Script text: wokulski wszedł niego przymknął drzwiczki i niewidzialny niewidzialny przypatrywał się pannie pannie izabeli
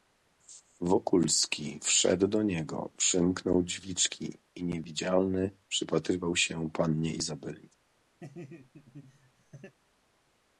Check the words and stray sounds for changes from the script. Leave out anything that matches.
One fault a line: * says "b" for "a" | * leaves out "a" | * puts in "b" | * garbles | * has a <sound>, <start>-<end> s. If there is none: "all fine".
* puts in "do"
* leaves out "niewidzialny"
* leaves out "pannie"
* has a laugh, 8.2-9.8 s